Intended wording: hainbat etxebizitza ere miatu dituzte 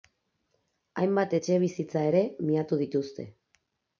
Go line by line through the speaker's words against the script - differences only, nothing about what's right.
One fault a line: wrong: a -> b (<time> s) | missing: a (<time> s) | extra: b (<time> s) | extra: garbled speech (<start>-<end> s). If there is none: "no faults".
no faults